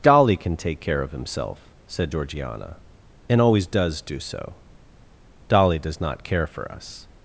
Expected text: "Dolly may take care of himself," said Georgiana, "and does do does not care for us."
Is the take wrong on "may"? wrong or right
wrong